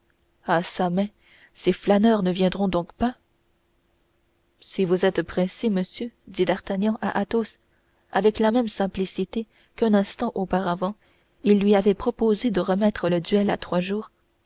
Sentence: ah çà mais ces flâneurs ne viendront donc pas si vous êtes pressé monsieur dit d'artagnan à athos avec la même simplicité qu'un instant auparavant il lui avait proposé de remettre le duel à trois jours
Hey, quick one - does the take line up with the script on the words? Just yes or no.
yes